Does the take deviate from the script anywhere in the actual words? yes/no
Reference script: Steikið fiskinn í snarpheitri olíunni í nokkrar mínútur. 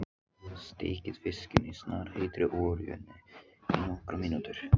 no